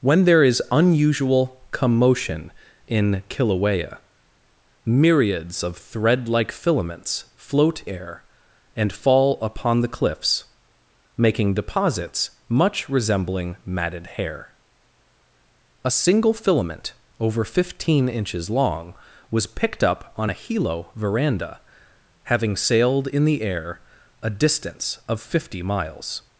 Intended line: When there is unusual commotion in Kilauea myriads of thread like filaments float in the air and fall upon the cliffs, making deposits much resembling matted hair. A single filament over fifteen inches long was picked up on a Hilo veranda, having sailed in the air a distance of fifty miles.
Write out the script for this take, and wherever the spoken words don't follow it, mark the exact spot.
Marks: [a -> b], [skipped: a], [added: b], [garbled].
When there is unusual commotion in Kilauea myriads of thread like filaments float [skipped: in the] air and fall upon the cliffs, making deposits much resembling matted hair. A single filament over fifteen inches long was picked up on a Hilo veranda, having sailed in the air a distance of fifty miles.